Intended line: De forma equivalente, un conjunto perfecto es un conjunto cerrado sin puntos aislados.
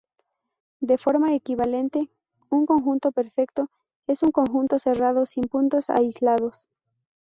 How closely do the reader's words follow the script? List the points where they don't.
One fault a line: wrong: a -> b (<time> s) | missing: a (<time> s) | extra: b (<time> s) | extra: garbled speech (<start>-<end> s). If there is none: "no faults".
no faults